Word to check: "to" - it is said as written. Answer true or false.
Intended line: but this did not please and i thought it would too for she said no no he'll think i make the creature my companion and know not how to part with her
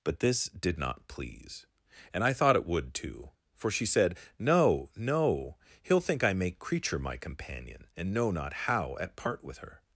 false